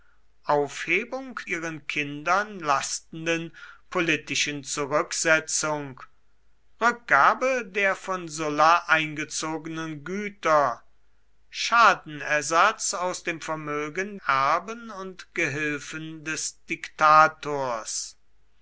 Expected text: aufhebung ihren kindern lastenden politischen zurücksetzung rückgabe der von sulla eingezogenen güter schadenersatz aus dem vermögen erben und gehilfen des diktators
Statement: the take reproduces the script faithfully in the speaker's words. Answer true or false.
true